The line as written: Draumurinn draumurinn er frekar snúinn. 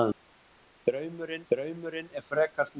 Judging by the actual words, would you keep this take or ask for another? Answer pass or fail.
pass